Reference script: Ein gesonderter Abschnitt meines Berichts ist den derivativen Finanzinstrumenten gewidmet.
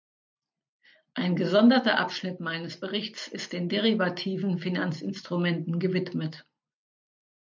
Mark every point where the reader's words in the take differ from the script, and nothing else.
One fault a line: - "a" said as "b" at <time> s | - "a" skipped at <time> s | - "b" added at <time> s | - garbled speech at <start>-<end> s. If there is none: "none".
none